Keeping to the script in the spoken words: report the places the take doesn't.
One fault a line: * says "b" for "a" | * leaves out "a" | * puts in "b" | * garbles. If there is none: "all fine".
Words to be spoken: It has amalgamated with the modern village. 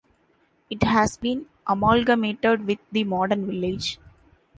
* puts in "been"